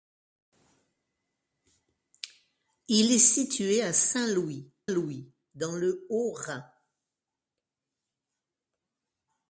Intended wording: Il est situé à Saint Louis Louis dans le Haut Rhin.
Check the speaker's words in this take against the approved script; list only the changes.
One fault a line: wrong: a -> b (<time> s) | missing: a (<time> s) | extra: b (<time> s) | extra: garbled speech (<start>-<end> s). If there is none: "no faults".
no faults